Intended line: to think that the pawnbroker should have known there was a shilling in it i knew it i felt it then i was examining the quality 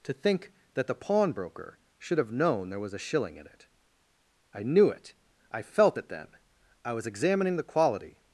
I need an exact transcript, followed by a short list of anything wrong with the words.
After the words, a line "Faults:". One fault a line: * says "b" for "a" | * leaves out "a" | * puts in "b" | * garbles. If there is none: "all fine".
to think that the pawnbroker should have known there was a shilling in it i knew it i felt it then i was examining the quality
Faults:
all fine